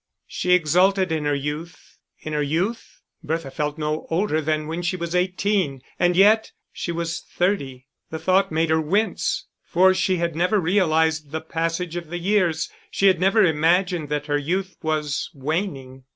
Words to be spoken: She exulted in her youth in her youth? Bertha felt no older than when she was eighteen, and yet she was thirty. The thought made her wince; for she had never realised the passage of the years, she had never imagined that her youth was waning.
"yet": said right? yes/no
yes